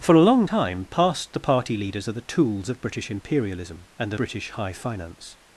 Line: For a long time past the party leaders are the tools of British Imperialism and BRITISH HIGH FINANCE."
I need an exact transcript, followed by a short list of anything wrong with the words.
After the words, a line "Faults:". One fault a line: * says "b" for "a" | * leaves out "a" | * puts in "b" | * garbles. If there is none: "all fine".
For a long time past the party leaders are the tools of British Imperialism and BRITISH HIGH FINANCE."
Faults:
all fine